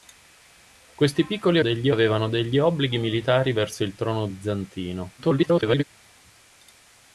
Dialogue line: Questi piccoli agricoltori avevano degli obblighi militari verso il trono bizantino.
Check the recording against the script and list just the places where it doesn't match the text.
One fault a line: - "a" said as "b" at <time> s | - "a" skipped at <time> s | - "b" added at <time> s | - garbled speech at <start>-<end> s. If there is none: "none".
- "agricoltori" said as "degli" at 1.6 s
- garbled speech at 5.2-5.8 s